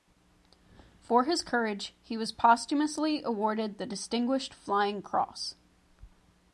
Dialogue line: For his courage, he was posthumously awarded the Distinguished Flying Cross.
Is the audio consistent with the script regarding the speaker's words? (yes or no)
yes